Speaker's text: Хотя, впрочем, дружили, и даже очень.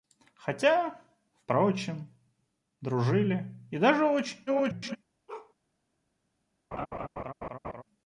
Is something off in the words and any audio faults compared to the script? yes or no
yes